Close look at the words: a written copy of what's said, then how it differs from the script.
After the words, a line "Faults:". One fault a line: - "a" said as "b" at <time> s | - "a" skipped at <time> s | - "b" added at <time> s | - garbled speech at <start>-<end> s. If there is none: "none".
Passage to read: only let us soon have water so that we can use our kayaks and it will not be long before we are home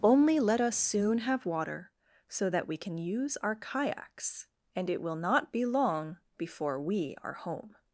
only let us soon have water so that we can use our kayaks and it will not be long before we are home
Faults:
none